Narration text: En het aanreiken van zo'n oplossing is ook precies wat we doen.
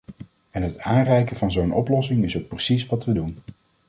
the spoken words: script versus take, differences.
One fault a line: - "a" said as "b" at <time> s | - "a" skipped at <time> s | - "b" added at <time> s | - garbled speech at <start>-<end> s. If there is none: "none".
none